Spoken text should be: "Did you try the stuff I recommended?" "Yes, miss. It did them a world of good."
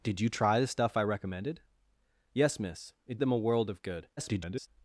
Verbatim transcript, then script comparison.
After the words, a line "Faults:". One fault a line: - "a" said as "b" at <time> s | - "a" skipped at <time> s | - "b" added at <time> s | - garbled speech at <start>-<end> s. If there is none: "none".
"Did you try the stuff I recommended?" "Yes, miss. It them a world of good." [garbled]
Faults:
- "did" skipped at 3.2 s
- garbled speech at 4.2-4.7 s